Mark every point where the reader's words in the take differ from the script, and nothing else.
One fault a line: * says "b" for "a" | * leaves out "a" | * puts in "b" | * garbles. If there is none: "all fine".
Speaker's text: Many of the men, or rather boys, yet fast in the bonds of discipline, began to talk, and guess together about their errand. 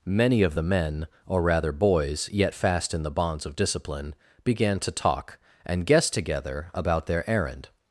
all fine